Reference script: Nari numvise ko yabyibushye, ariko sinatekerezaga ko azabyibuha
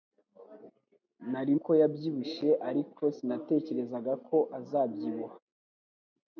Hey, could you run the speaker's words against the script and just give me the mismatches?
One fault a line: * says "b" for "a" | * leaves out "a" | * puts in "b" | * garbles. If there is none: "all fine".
* leaves out "numvise"